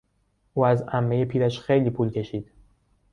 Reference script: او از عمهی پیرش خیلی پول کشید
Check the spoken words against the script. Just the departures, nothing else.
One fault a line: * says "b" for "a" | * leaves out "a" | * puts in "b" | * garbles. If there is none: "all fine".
all fine